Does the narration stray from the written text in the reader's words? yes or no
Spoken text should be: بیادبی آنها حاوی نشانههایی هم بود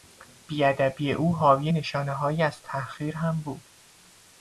yes